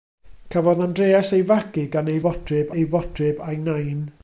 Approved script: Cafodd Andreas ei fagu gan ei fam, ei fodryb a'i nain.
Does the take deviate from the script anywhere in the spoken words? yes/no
yes